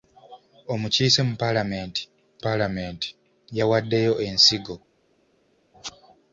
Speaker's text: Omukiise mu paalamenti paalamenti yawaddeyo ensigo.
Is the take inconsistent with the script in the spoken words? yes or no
no